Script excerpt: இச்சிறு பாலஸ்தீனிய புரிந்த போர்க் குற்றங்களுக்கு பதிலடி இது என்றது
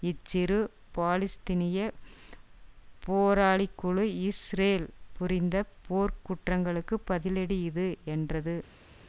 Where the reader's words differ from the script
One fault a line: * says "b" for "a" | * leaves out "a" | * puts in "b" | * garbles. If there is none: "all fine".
* puts in "போராளிக்குழு இஸ்ரேல்"